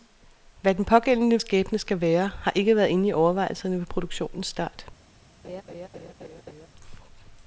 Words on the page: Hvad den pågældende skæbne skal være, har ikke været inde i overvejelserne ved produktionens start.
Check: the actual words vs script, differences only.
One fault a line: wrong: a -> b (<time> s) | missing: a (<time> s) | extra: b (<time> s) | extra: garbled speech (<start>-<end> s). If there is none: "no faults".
no faults